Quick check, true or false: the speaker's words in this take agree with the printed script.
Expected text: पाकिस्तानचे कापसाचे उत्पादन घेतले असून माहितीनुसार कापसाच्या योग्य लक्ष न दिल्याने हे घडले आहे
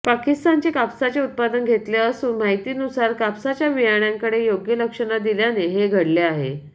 false